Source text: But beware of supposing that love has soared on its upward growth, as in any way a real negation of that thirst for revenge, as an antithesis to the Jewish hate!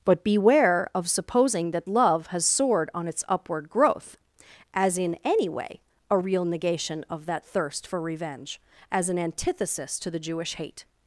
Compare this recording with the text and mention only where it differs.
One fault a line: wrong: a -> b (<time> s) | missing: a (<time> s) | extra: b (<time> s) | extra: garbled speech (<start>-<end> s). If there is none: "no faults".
no faults